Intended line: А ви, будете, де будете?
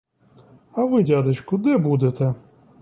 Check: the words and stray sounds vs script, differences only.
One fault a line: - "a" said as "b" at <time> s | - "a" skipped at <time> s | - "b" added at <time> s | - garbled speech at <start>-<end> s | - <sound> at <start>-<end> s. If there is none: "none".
- "будете" said as "дядечку" at 1.0 s